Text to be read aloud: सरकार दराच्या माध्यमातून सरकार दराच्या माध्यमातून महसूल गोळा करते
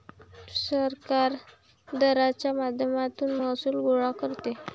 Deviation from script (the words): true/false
true